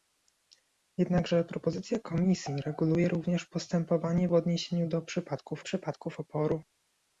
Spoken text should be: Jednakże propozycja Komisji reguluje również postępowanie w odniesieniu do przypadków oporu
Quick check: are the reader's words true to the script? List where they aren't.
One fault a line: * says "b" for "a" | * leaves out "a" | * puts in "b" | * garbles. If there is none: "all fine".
* puts in "przypadków"